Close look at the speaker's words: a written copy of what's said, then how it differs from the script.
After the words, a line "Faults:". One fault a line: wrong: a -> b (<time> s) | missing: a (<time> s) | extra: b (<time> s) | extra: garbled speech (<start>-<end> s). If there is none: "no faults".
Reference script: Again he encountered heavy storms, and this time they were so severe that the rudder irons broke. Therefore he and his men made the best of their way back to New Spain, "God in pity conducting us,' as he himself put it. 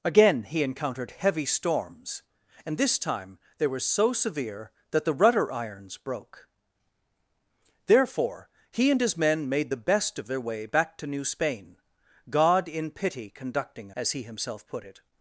Again he encountered heavy storms, and this time they were so severe that the rudder irons broke. Therefore he and his men made the best of their way back to New Spain, "God in pity conducting,' as he himself put it.
Faults:
missing: us (13.9 s)